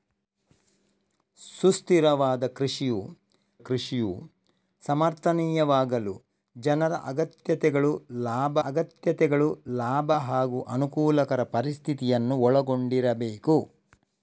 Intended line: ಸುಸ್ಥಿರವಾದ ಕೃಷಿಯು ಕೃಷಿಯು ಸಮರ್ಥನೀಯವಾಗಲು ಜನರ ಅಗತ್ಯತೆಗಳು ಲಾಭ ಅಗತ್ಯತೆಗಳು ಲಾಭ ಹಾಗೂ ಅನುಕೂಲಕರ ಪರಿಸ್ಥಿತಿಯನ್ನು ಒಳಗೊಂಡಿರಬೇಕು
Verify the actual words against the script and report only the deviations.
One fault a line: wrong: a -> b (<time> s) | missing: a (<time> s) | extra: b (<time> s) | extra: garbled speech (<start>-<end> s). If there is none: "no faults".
no faults